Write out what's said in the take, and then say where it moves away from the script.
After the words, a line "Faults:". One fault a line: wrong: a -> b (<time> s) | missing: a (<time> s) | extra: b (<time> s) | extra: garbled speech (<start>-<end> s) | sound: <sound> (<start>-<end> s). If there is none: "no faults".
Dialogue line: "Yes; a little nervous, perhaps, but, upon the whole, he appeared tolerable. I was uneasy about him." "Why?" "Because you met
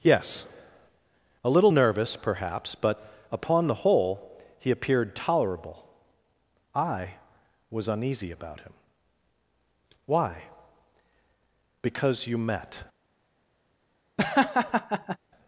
"Yes; a little nervous, perhaps, but, upon the whole, he appeared tolerable. I was uneasy about him." "Why?" "Because you met
Faults:
sound: laugh (14.2-15.2 s)